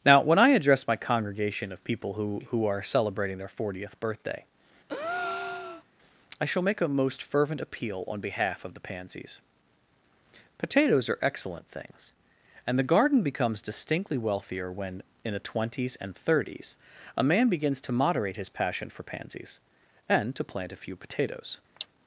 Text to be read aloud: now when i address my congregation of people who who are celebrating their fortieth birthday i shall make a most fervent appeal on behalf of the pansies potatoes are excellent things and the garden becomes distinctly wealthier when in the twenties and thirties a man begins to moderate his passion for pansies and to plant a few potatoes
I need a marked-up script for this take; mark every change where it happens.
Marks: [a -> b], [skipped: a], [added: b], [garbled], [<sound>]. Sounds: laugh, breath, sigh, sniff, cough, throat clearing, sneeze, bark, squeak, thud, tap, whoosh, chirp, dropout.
now when i address my congregation of people who who are celebrating their fortieth birthday [breath] i shall make a most fervent appeal on behalf of the pansies potatoes are excellent things and the garden becomes distinctly wealthier when in the twenties and thirties a man begins to moderate his passion for pansies and to plant a few potatoes [cough]